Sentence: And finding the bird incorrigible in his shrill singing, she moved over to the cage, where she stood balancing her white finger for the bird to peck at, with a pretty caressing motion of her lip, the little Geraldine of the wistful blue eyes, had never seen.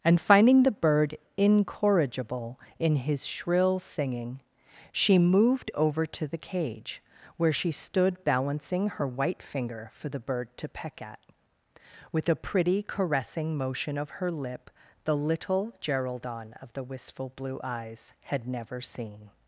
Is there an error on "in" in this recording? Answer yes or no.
no